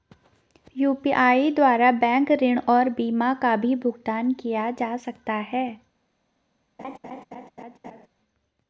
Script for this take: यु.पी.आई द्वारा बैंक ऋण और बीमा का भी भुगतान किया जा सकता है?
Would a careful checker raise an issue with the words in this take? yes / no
no